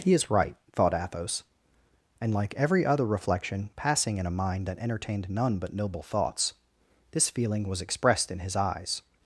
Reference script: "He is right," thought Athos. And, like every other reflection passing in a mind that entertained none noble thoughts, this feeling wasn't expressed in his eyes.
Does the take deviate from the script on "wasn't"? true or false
true